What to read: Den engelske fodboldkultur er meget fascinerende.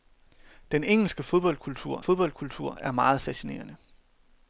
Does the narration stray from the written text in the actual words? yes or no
yes